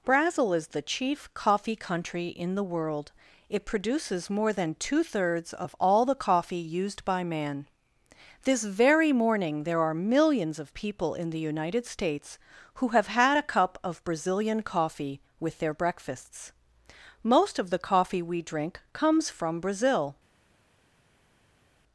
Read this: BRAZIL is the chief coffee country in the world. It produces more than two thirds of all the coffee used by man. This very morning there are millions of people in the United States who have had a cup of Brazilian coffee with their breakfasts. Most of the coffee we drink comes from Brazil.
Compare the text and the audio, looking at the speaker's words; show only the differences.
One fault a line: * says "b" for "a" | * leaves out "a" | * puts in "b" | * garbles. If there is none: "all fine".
all fine